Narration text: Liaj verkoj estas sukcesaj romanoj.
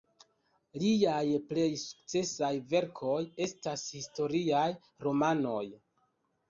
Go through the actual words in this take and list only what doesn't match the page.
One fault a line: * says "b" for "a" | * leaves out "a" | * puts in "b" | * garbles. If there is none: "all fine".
* puts in "plej sukcesaj"
* says "historiaj" for "sukcesaj"